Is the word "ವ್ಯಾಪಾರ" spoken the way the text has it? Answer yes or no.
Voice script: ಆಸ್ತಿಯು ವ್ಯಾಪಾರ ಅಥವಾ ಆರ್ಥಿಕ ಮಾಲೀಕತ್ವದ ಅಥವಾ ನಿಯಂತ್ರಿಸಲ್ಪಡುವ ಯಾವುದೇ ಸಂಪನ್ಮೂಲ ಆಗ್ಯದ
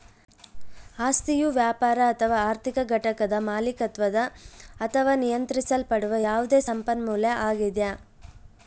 yes